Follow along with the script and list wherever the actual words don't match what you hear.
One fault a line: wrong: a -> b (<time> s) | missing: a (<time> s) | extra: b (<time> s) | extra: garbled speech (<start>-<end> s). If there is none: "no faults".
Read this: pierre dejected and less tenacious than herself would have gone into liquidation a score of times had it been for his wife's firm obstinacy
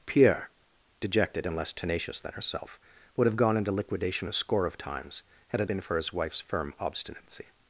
no faults